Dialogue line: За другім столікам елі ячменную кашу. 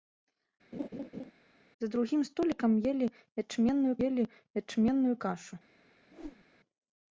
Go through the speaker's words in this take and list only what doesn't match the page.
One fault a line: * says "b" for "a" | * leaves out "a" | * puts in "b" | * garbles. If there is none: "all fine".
* puts in "елі ячменную"